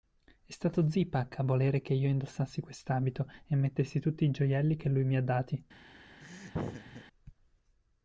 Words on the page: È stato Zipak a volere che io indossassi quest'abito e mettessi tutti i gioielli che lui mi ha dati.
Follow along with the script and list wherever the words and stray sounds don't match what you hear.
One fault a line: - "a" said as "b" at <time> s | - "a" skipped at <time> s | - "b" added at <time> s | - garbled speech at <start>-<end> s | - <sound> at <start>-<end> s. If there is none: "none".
- laugh at 6.2-7.0 s